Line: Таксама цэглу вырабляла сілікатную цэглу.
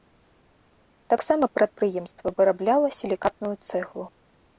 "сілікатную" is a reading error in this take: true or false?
false